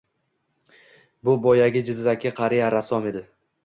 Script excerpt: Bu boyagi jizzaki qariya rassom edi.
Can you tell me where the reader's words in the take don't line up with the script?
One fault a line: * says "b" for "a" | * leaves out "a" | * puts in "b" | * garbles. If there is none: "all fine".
all fine